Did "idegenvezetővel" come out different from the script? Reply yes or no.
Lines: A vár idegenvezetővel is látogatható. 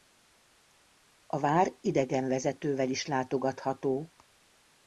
no